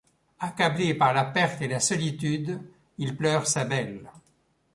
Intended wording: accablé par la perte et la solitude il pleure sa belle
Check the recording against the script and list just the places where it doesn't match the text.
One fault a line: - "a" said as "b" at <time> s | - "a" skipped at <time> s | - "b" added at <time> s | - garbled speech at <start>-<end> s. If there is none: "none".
none